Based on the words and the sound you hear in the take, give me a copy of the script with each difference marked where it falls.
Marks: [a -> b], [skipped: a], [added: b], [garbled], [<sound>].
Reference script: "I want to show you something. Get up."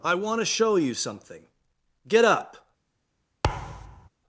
"I want to show you something. Get up." [thud]